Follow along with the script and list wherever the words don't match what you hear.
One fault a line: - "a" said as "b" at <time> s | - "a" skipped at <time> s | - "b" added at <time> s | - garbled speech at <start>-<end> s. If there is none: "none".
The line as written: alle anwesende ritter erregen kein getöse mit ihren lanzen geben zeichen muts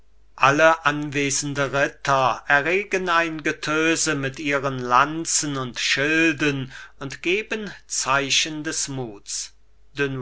- "kein" said as "ein" at 3.1 s
- "und schilden und" added at 5.6 s
- "des" added at 8.6 s